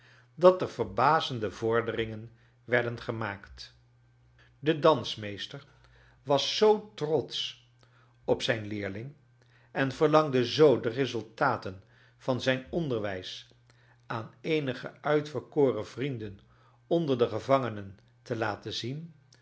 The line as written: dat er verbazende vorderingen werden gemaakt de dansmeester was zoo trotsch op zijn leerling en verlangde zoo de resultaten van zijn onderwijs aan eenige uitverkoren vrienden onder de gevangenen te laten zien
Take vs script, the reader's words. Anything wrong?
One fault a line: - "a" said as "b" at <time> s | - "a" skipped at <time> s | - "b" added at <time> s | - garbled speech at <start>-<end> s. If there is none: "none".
none